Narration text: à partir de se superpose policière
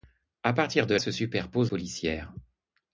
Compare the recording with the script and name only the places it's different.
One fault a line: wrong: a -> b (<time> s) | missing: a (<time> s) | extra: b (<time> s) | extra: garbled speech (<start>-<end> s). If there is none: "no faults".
no faults